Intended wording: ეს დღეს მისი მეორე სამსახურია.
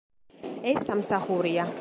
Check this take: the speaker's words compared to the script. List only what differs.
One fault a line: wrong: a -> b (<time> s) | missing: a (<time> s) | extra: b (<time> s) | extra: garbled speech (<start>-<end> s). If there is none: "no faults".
missing: დღეს მისი მეორე (0.9 s)